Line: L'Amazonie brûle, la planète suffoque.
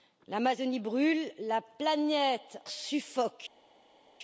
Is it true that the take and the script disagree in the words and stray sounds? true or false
false